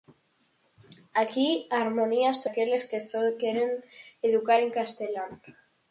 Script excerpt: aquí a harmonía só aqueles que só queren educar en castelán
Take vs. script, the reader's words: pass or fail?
pass